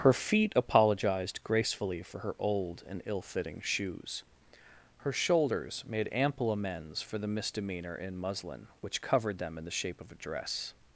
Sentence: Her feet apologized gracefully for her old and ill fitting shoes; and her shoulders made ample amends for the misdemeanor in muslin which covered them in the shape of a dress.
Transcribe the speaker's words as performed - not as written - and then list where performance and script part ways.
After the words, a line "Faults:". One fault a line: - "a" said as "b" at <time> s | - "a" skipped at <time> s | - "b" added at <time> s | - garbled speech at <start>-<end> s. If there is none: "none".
Her feet apologized gracefully for her old and ill fitting shoes; her shoulders made ample amends for the misdemeanor in muslin which covered them in the shape of a dress.
Faults:
- "and" skipped at 4.2 s